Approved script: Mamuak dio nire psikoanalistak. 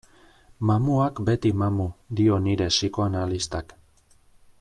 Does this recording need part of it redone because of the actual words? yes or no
yes